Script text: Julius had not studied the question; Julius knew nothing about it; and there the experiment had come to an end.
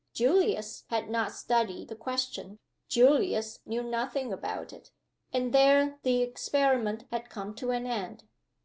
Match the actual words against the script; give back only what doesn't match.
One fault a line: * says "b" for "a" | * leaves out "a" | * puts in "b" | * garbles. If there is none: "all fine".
all fine